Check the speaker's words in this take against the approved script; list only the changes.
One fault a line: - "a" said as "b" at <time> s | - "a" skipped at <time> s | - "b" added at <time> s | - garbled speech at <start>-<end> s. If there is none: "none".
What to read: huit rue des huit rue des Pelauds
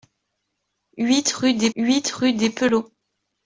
none